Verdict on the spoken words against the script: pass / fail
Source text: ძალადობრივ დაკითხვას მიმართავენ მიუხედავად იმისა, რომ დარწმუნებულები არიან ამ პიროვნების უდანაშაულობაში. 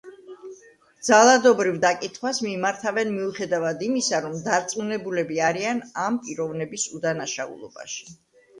pass